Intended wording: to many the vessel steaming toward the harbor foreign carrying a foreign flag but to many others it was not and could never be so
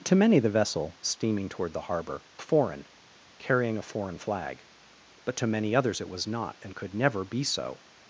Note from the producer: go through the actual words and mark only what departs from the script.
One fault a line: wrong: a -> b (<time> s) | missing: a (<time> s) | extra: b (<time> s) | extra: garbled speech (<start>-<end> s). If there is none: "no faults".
no faults